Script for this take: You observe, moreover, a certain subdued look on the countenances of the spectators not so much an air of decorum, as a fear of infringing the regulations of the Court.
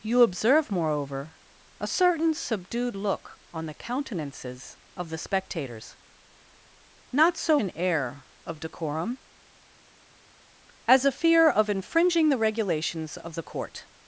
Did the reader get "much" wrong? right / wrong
wrong